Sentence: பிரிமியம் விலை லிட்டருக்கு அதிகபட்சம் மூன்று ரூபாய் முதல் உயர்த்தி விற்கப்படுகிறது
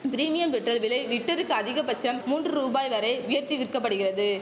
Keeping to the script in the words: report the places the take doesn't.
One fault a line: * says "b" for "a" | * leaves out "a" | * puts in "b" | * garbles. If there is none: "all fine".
* puts in "பெட்ரோல்"
* says "வரை" for "முதல்"